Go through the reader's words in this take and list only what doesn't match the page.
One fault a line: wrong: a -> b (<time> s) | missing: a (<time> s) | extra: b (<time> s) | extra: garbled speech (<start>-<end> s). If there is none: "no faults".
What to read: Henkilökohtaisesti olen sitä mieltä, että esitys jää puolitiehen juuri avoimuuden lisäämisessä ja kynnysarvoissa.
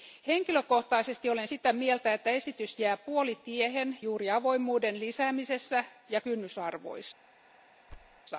no faults